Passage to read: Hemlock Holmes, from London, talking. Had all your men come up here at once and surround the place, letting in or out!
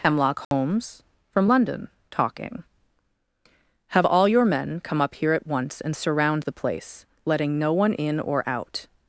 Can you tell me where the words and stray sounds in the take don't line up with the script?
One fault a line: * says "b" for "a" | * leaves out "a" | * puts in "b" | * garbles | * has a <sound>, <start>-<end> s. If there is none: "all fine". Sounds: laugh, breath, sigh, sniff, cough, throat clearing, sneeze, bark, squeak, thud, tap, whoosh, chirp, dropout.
* has a dropout, 0.4-0.5 s
* says "Have" for "Had"
* puts in "no one"